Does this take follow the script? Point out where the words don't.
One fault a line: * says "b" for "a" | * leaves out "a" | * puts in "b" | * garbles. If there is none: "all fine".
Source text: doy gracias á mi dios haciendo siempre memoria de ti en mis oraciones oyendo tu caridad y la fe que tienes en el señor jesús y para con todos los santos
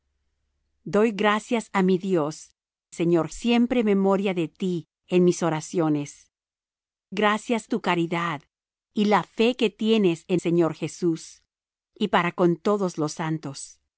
* says "señor" for "haciendo"
* says "gracias" for "oyendo"
* leaves out "el"